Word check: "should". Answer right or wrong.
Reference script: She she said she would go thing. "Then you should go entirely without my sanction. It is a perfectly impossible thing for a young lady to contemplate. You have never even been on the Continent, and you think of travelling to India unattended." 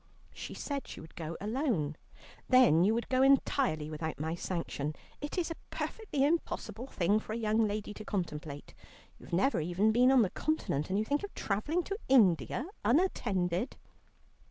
wrong